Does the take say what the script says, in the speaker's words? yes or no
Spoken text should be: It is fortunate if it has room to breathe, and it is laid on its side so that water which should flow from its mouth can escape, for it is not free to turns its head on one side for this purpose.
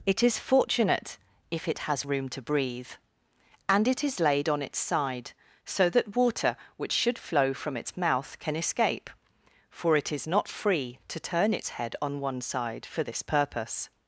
no